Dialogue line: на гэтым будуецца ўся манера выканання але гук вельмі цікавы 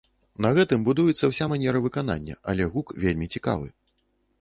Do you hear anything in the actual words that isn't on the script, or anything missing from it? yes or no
no